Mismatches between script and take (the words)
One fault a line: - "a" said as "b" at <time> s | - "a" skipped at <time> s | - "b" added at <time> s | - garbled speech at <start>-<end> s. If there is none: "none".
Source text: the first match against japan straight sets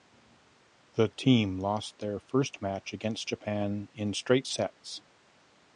- "team lost their" added at 1.1 s
- "in" added at 3.9 s